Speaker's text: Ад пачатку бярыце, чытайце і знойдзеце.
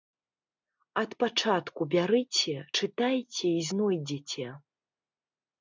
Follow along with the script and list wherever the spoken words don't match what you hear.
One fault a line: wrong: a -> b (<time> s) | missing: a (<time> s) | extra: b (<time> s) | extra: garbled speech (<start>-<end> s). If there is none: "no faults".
no faults